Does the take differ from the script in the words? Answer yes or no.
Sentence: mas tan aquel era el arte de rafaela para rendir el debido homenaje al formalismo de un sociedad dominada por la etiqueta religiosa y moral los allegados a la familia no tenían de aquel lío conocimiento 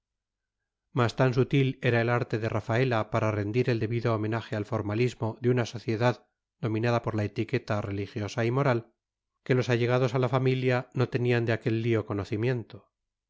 yes